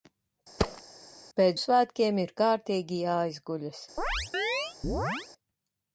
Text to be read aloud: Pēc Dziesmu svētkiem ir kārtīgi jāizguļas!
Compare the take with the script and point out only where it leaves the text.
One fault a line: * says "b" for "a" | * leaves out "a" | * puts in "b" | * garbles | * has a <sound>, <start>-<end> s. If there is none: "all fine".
* has a thud, 0.6-0.8 s
* leaves out "Dziesmu"
* has a chirp, 4.0-5.3 s